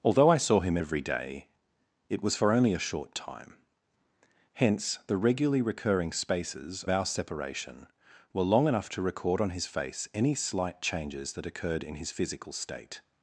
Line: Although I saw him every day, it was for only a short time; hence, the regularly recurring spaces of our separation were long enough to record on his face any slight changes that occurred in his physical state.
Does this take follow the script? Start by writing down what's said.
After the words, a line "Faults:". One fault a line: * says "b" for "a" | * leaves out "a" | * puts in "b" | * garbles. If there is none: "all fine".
Although I saw him every day, it was for only a short time; hence, the regularly recurring spaces our separation were long enough to record on his face any slight changes that occurred in his physical state.
Faults:
* leaves out "of"